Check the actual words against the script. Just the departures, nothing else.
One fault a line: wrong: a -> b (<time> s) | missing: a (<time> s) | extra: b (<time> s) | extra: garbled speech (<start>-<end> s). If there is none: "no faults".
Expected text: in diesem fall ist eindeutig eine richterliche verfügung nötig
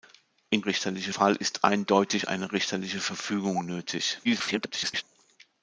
wrong: diesem -> richterliche (0.6 s)
extra: garbled speech (4.2-5.0 s)